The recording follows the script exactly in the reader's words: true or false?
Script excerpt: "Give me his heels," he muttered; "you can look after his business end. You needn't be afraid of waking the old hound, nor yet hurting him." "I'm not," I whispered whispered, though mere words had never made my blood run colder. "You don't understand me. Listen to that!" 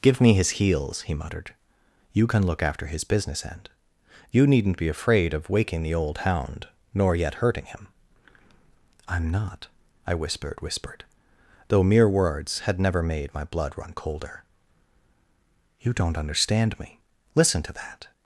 true